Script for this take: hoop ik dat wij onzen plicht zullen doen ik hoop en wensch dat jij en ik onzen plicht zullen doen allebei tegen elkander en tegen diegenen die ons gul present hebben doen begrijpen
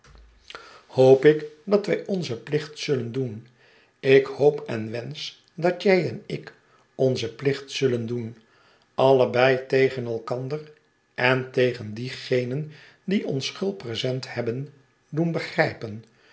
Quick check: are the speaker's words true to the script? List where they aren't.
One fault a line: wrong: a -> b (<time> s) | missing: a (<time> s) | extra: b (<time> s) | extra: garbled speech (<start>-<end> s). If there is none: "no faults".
no faults